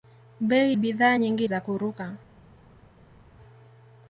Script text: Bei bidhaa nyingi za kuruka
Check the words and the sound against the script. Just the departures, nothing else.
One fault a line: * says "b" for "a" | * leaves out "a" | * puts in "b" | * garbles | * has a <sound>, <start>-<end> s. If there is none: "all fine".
all fine